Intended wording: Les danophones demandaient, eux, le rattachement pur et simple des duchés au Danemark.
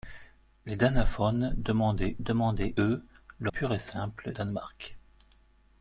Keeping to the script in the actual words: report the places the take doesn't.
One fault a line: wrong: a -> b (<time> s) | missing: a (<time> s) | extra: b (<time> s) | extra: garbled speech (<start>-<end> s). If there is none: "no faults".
extra: demandaient (2.2 s)
missing: rattachement (3.5 s)
missing: des duchés au (4.3 s)